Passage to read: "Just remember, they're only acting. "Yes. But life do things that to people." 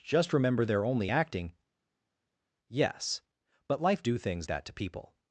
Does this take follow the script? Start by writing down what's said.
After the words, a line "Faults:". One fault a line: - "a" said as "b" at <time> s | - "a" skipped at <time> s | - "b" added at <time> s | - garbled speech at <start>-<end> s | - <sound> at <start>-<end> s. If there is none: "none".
"Just remember, they're only acting. "Yes. But life do things that to people."
Faults:
none